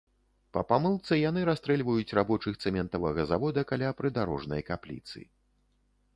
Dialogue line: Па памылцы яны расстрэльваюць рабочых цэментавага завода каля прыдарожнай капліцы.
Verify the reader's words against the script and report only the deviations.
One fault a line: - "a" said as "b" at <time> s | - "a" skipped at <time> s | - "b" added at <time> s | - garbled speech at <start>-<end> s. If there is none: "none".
none